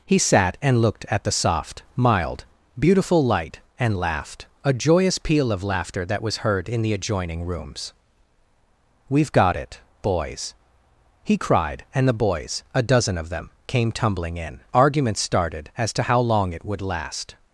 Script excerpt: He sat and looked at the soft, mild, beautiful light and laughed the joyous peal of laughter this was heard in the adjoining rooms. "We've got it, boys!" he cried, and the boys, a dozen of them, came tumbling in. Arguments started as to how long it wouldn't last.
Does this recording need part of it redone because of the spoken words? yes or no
yes